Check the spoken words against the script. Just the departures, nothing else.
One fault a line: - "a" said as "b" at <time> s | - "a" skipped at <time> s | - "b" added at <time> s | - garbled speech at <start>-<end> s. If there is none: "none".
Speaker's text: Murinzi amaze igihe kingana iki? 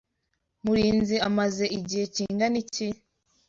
none